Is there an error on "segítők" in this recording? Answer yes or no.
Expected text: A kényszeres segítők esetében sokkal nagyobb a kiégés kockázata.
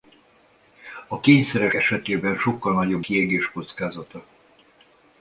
yes